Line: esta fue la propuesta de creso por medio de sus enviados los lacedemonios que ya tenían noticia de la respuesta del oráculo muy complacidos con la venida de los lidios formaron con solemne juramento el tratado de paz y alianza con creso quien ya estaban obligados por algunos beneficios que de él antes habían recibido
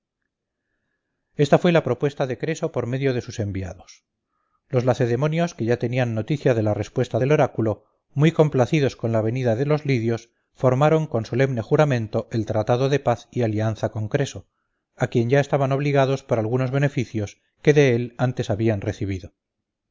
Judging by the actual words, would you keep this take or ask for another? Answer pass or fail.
fail